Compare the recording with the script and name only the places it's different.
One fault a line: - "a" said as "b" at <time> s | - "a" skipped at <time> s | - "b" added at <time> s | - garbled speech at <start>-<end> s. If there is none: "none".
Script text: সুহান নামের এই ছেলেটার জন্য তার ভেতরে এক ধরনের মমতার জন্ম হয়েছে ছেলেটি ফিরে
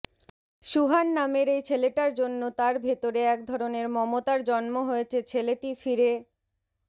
none